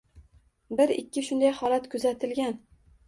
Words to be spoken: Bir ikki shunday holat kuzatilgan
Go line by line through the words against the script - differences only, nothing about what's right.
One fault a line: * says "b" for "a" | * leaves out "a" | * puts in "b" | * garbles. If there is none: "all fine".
all fine